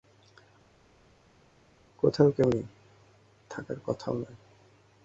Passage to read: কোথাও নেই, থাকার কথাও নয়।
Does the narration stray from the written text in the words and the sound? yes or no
yes